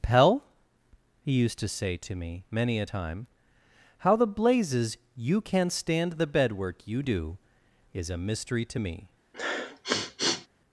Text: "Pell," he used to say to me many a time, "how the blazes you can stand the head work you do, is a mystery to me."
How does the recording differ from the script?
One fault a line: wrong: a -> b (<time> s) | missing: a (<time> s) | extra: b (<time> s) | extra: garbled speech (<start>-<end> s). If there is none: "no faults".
wrong: head -> bed (6.3 s)